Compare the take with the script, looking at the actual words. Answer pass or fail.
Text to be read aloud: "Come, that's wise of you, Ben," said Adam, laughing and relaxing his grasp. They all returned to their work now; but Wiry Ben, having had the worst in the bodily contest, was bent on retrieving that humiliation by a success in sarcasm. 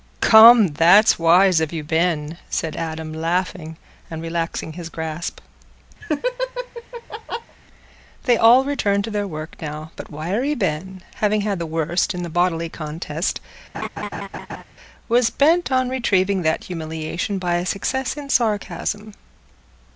pass